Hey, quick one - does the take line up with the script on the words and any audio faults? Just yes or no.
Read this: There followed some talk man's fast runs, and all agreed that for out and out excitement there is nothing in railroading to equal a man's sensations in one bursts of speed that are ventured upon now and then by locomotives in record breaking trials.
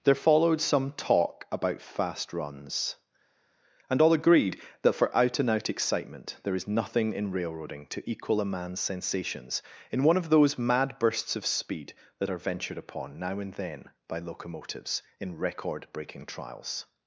no